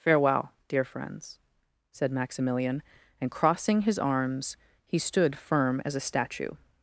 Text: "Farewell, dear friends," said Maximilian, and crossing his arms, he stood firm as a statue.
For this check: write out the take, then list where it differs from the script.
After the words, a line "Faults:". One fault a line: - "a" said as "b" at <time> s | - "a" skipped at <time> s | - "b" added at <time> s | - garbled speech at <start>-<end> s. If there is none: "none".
"Farewell, dear friends," said Maximilian, and crossing his arms, he stood firm as a statue.
Faults:
none